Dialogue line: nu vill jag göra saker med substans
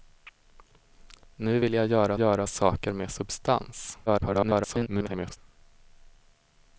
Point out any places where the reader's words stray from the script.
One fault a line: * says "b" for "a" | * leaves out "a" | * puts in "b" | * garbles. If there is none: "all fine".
* puts in "göra"
* garbles